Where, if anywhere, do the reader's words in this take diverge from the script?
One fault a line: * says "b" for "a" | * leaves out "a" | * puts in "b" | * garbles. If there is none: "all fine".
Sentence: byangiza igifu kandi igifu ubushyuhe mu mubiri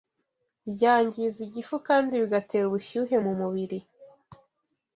* says "bigatera" for "igifu"